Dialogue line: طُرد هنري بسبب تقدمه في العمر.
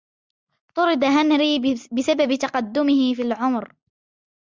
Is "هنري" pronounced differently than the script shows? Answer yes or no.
no